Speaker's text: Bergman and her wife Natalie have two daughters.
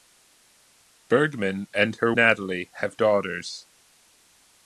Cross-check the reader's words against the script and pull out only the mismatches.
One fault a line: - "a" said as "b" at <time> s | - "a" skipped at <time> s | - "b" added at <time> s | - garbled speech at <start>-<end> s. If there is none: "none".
- "wife" skipped at 2.1 s
- "two" skipped at 3.0 s